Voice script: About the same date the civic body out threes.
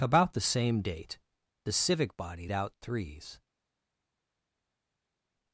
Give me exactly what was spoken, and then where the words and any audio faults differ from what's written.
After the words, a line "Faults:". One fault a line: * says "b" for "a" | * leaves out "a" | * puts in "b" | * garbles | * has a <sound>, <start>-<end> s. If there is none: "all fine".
About the same date the civic body out threes.
Faults:
all fine